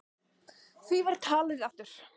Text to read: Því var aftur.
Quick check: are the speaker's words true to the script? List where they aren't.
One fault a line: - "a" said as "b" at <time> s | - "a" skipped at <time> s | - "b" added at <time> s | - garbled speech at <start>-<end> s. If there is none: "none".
- "talið" added at 1.3 s